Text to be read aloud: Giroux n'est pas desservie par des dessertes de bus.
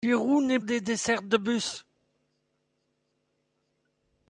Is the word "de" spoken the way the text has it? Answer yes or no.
yes